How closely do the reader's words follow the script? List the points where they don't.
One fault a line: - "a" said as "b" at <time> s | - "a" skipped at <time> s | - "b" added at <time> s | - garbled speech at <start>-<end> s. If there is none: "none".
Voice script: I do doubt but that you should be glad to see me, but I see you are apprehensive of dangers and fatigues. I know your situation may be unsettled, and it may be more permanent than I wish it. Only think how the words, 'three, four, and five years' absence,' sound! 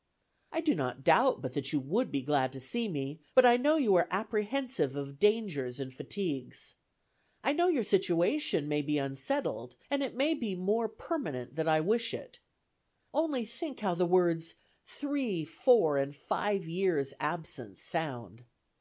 - "not" added at 0.7 s
- "should" said as "would" at 1.8 s
- "see" said as "know" at 3.5 s